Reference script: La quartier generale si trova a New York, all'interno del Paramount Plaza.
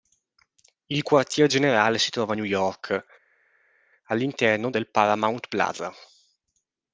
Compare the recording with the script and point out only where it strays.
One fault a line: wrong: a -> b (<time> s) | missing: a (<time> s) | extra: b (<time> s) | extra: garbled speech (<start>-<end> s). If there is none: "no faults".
wrong: La -> Il (0.9 s)